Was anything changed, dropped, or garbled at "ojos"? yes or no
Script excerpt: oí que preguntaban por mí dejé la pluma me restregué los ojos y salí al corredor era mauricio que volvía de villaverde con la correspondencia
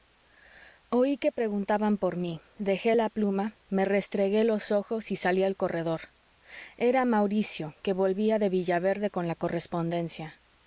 no